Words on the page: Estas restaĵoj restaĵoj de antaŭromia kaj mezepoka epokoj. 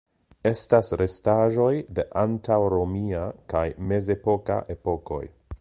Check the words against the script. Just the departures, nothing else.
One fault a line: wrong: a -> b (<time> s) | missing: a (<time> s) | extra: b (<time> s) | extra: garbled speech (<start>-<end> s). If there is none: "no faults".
missing: restaĵoj (1.7 s)